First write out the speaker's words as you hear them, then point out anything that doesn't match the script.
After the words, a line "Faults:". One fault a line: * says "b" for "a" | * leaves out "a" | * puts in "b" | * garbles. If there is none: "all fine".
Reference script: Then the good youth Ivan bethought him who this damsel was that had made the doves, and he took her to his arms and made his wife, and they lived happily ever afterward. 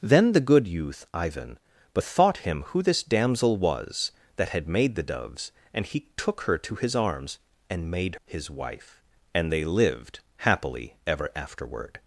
Then the good youth Ivan bethought him who this damsel was that had made the doves, and he took her to his arms and made his wife, and they lived happily ever afterward.
Faults:
all fine